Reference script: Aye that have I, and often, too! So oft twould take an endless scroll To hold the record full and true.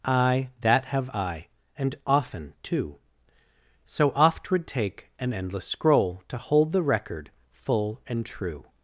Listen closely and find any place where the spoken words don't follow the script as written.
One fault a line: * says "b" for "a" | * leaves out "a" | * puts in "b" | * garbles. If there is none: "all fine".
all fine